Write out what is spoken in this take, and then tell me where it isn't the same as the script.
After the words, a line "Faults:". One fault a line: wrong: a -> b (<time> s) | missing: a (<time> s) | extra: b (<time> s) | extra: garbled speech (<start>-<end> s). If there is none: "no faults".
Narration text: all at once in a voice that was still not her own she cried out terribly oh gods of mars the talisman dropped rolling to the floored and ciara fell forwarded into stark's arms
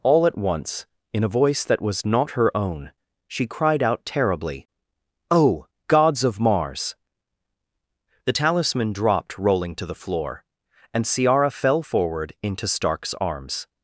all at once in a voice that was not her own she cried out terribly oh gods of mars the talisman dropped rolling to the floor and ciara fell forward into stark's arms
Faults:
missing: still (2.0 s)
wrong: floored -> floor (9.9 s)
wrong: forwarded -> forward (11.8 s)